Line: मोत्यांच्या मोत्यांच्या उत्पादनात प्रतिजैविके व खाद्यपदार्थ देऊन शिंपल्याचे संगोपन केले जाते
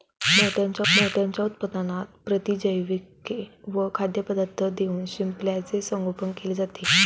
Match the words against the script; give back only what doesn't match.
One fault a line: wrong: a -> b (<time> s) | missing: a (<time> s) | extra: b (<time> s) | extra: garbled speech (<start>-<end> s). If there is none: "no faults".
no faults